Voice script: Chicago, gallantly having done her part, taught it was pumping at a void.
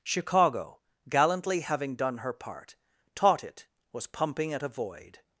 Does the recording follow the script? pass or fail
pass